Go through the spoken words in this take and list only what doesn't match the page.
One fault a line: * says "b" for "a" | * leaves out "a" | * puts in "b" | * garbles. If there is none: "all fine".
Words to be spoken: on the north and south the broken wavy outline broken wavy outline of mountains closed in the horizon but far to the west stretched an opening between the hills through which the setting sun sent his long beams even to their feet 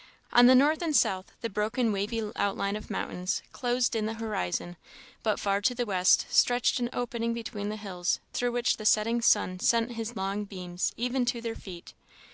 * leaves out "broken wavy outline"